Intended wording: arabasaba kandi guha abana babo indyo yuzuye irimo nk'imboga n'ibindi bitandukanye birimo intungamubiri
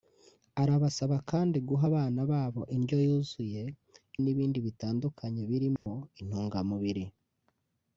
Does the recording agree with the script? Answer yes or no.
no